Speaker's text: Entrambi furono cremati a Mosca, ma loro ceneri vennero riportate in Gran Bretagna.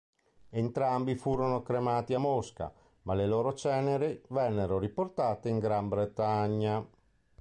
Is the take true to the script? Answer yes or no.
no